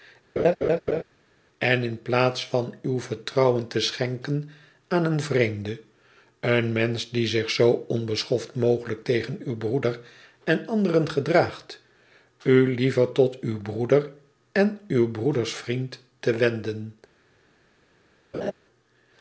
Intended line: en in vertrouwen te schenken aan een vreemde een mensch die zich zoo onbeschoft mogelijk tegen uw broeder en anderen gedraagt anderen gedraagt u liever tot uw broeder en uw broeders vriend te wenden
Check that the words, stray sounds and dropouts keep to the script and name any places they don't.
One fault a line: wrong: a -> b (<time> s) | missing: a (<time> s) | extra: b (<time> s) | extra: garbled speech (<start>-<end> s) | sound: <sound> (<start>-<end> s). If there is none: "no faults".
sound: laugh (0.4-1.0 s)
extra: plaats van uw (2.0 s)
missing: anderen gedraagt (11.8 s)
sound: laugh (18.3-18.5 s)